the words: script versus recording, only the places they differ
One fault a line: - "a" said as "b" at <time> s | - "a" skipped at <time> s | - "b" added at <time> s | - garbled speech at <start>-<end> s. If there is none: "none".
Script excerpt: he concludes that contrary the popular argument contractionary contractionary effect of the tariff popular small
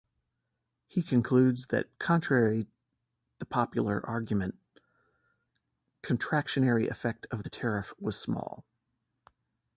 - "contractionary" skipped at 6.9 s
- "popular" said as "was" at 8.0 s